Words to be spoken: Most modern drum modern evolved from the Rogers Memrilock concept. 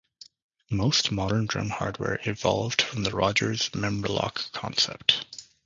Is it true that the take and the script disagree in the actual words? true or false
true